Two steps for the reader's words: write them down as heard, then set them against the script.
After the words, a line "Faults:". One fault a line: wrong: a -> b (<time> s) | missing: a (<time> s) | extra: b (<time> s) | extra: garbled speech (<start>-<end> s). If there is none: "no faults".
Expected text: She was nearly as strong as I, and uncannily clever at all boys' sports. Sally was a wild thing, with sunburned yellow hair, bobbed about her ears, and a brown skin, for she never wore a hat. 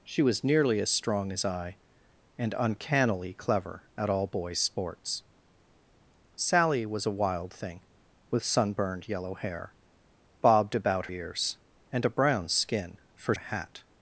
She was nearly as strong as I, and uncannily clever at all boys' sports. Sally was a wild thing, with sunburned yellow hair, bobbed about ears, and a brown skin, for a hat.
Faults:
missing: her (11.1 s)
missing: she never wore (13.3 s)